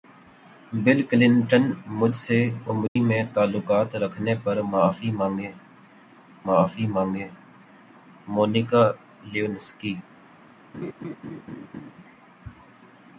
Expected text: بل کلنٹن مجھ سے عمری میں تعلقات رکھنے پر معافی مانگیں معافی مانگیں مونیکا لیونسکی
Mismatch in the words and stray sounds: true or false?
true